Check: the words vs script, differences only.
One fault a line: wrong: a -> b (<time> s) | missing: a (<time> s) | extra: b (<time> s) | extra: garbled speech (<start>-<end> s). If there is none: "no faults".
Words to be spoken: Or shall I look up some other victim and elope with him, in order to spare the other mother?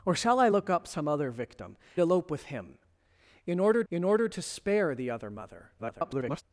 missing: and (1.8 s)
extra: in order (3.9 s)
extra: garbled speech (5.8-6.4 s)